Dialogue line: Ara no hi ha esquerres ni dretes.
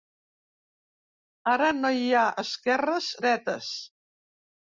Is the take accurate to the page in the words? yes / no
no